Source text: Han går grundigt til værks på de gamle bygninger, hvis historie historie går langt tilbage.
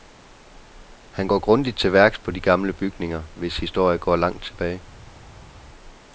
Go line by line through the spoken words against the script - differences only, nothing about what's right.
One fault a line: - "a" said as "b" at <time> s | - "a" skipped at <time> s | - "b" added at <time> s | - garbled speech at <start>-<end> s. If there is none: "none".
- "historie" skipped at 4.0 s